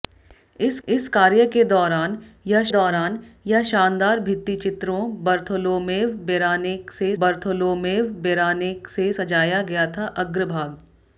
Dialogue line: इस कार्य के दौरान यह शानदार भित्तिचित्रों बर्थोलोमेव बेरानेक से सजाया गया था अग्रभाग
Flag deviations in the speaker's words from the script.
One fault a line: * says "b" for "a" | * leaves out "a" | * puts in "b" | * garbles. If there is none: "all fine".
* puts in "इस"
* puts in "दौरान यह"
* puts in "बर्थोलोमेव बेरानेक से"